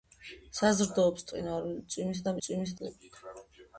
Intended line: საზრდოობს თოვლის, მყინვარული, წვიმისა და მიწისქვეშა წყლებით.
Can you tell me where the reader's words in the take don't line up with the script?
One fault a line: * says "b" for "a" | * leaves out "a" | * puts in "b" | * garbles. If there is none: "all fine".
* leaves out "თოვლის"
* says "წვიმისა" for "მიწისქვეშა"